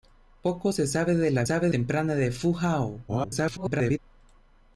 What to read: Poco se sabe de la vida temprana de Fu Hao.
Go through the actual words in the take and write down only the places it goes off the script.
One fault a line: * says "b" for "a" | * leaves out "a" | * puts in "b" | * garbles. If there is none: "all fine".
* says "sabe" for "vida"
* garbles